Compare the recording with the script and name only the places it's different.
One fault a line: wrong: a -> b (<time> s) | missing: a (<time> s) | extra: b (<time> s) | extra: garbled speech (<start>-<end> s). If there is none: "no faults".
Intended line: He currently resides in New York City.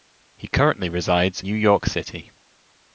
missing: in (1.4 s)